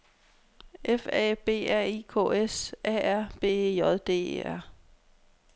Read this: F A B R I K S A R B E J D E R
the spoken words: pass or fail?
pass